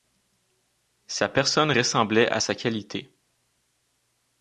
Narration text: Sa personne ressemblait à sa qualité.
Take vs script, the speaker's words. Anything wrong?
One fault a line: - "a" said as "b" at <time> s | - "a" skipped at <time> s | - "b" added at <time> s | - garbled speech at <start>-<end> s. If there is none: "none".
none